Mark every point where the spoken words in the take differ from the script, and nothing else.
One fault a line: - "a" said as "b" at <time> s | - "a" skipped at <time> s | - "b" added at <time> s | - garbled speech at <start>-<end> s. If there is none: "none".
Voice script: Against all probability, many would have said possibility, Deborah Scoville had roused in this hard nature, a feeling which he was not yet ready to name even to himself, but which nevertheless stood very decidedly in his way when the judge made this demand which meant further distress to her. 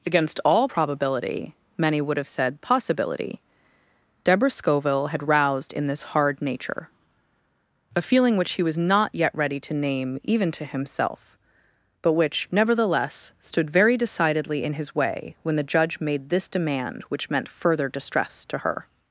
none